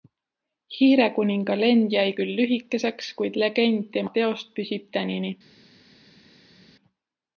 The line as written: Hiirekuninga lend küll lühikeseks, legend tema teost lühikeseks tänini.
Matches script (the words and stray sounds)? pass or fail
fail